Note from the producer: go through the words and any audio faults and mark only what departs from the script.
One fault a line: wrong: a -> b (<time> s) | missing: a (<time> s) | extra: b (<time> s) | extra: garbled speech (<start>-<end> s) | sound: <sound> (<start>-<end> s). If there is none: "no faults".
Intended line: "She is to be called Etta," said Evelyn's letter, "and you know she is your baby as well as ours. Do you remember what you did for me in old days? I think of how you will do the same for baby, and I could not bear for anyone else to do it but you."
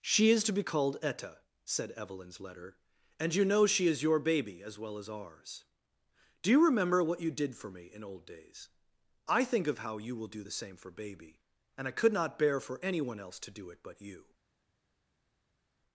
no faults